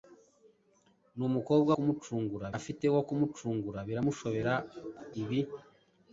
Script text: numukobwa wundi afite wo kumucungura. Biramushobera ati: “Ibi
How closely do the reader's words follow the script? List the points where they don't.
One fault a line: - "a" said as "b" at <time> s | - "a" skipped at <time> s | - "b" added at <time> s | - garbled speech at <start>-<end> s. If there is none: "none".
- "wundi" said as "kumucungura" at 1.7 s
- "ati" skipped at 4.5 s